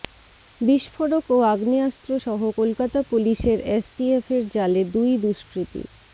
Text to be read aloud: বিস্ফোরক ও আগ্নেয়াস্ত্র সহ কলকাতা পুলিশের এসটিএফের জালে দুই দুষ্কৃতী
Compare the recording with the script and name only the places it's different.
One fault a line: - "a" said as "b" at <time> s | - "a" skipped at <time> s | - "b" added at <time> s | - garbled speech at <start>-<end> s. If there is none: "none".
none